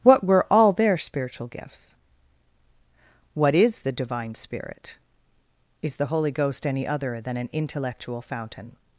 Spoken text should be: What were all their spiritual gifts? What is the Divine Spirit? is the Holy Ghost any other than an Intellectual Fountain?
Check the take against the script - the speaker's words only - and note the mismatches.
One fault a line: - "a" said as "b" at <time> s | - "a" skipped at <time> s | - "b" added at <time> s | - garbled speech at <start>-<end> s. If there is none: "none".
none